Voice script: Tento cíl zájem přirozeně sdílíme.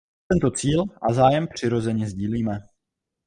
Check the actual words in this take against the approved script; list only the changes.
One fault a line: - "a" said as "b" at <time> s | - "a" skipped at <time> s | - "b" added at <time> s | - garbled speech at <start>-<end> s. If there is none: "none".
- "a" added at 1.0 s